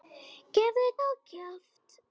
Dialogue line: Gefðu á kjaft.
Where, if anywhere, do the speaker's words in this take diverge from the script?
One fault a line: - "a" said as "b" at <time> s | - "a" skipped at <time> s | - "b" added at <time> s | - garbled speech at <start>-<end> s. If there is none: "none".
none